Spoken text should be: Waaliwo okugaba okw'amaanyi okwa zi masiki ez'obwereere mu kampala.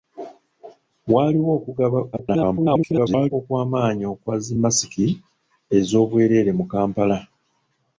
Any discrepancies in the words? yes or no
yes